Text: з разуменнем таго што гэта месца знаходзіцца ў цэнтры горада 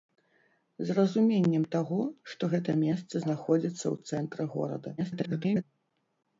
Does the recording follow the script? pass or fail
fail